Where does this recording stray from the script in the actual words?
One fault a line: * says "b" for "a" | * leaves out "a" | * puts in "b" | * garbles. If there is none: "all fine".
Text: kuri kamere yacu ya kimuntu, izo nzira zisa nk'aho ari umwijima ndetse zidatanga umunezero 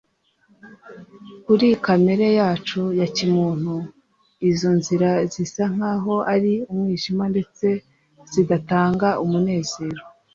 all fine